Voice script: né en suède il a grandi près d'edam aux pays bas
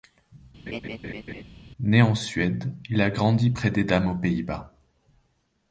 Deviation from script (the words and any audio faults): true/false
true